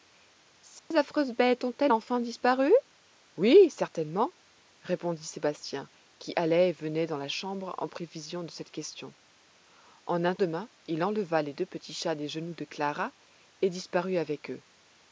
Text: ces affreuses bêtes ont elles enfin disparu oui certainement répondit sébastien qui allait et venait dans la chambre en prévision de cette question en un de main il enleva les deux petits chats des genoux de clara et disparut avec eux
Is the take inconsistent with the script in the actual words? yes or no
no